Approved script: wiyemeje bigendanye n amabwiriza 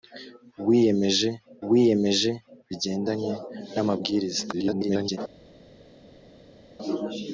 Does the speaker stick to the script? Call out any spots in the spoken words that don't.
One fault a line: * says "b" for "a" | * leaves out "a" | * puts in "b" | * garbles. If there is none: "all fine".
* puts in "wiyemeje"
* garbles